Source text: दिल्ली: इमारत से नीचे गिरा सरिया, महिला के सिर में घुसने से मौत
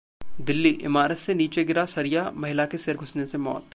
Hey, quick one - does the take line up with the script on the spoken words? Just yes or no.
no